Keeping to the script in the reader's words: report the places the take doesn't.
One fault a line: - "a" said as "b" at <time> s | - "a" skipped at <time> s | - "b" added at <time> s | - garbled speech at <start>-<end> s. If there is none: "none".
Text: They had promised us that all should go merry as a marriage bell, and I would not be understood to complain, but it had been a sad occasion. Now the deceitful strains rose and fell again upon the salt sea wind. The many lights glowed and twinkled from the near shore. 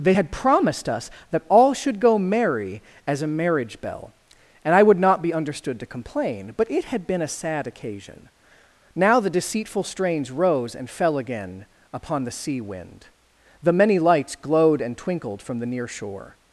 - "salt" skipped at 12.3 s